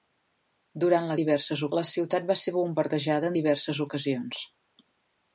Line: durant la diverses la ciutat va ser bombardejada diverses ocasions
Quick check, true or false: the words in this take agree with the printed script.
true